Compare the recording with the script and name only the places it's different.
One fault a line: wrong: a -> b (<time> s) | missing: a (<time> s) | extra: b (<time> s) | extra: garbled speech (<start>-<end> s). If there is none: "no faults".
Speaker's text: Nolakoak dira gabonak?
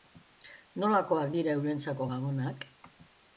extra: eurentzako (1.6 s)